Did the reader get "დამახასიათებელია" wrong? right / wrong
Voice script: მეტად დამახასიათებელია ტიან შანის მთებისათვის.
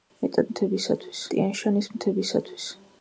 wrong